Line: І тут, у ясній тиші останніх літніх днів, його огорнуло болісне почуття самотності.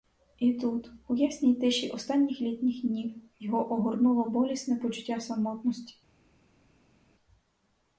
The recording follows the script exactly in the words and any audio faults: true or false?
true